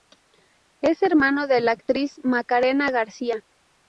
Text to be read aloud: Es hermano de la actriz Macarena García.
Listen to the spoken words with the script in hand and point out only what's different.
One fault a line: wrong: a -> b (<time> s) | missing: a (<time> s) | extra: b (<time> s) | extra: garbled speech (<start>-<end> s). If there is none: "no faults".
no faults